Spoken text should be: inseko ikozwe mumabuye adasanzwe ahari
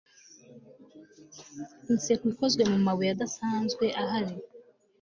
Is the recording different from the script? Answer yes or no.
no